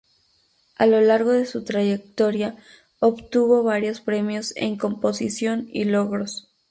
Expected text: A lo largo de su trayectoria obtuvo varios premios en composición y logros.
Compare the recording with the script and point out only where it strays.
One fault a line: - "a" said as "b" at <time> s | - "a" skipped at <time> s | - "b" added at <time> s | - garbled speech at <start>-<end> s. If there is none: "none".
none